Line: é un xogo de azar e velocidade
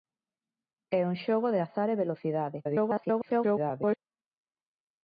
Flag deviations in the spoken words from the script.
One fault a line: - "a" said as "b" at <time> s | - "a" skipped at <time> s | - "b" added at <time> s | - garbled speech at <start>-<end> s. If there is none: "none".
- garbled speech at 2.6-4.0 s